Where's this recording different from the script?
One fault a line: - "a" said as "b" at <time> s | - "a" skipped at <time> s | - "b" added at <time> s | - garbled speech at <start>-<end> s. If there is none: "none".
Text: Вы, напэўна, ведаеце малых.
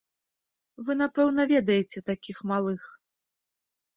- "такіх" added at 2.1 s